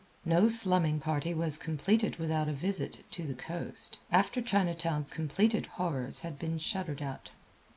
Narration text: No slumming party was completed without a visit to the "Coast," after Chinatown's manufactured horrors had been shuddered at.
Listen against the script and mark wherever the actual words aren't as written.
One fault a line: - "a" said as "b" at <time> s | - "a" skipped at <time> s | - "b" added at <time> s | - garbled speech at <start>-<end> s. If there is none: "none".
- "manufactured" said as "completed" at 5.1 s